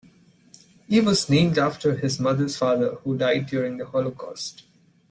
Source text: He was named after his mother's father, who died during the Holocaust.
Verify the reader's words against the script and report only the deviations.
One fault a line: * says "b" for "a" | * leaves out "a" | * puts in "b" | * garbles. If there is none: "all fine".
all fine